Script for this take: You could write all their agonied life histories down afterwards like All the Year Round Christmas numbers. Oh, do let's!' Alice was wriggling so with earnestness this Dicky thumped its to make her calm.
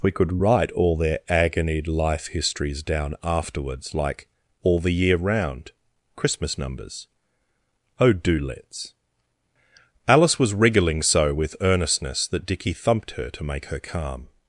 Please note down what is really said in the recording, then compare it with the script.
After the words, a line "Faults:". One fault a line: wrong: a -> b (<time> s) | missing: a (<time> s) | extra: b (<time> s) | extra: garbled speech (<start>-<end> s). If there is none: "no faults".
We could write all their agonied life histories down afterwards like All the Year Round Christmas numbers. Oh, do let's!' Alice was wriggling so with earnestness that Dicky thumped her to make her calm.
Faults:
wrong: You -> We (0.0 s)
wrong: this -> that (12.3 s)
wrong: its -> her (13.1 s)